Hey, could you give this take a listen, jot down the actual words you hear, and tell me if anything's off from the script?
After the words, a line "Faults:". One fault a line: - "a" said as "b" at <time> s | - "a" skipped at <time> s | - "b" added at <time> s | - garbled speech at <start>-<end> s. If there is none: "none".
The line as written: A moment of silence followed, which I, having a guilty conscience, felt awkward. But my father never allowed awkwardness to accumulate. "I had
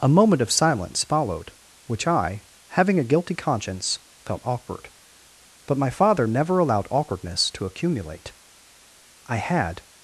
A moment of silence followed, which I, having a guilty conscience, felt awkward. But my father never allowed awkwardness to accumulate. "I had
Faults:
none